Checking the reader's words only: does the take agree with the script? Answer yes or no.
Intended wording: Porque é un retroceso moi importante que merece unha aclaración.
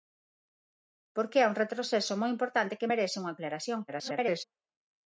no